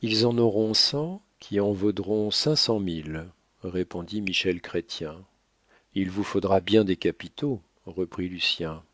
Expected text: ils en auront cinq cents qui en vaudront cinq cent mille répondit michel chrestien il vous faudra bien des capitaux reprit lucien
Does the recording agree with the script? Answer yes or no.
no